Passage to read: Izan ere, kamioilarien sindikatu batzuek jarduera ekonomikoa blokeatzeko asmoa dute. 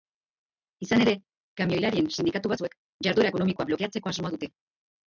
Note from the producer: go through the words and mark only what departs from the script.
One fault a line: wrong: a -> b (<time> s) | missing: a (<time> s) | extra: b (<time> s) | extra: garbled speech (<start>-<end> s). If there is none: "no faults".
no faults